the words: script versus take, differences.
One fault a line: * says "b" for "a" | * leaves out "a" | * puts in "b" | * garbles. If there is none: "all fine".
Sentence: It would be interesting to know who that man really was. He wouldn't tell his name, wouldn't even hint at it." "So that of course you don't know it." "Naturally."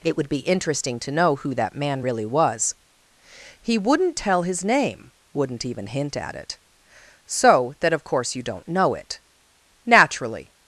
all fine